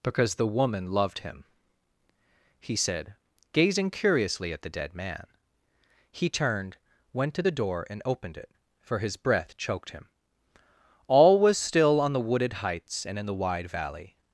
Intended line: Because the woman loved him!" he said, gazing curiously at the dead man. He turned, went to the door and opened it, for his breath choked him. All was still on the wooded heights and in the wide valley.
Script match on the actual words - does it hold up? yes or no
yes